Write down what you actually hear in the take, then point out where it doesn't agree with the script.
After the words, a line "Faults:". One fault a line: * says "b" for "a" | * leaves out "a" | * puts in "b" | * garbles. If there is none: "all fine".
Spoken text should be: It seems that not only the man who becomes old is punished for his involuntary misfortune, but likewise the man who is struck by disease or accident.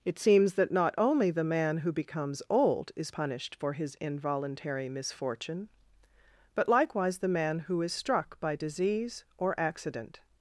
It seems that not only the man who becomes old is punished for his involuntary misfortune, but likewise the man who is struck by disease or accident.
Faults:
all fine